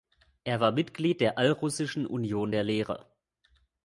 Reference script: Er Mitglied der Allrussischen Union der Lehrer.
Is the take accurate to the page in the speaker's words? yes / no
no